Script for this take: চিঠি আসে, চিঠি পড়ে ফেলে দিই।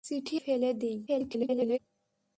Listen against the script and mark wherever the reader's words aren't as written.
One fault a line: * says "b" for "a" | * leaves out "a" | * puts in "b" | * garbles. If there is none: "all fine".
* leaves out "আসে চিঠি পড়ে"
* garbles